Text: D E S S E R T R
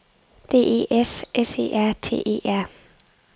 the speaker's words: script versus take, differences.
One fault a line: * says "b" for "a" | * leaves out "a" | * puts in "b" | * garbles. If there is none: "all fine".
* puts in "E"